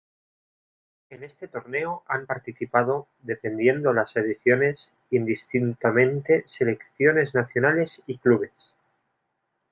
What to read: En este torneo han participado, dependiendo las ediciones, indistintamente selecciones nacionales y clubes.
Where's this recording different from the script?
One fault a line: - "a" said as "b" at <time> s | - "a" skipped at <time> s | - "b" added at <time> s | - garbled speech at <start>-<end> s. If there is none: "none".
none